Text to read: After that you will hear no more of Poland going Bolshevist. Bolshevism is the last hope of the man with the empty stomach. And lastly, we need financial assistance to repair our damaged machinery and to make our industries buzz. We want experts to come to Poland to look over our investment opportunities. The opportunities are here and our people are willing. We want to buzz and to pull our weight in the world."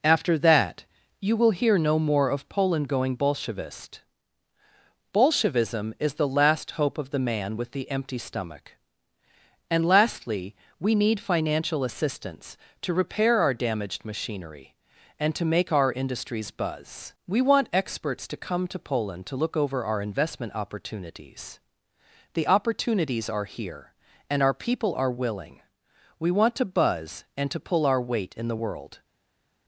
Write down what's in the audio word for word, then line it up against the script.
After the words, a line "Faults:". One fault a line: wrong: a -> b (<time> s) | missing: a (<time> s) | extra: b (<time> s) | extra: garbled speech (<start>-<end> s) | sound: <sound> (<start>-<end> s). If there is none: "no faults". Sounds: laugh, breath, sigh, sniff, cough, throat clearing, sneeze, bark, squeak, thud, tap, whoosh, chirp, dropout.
After that you will hear no more of Poland going Bolshevist. Bolshevism is the last hope of the man with the empty stomach. And lastly, we need financial assistance to repair our damaged machinery and to make our industries buzz. We want experts to come to Poland to look over our investment opportunities. The opportunities are here and our people are willing. We want to buzz and to pull our weight in the world."
Faults:
no faults